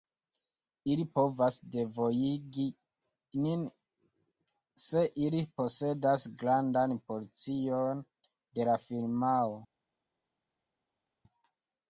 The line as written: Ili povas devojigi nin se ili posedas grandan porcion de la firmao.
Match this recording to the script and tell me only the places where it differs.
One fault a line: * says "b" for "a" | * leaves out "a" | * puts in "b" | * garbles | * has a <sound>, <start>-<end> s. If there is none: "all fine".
all fine